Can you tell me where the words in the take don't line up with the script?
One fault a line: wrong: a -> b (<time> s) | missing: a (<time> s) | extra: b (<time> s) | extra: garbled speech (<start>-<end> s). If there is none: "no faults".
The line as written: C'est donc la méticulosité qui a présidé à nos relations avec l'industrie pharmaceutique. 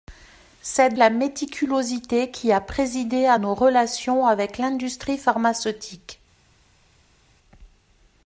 missing: donc (0.9 s)